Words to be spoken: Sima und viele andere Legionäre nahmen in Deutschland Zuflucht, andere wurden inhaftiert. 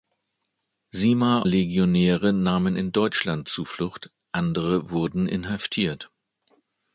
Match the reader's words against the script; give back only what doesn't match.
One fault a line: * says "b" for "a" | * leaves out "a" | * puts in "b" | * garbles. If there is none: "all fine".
* leaves out "und viele andere"